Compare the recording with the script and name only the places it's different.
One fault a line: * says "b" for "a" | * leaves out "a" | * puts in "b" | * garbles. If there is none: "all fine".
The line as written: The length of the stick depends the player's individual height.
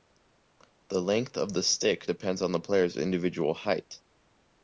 * puts in "on"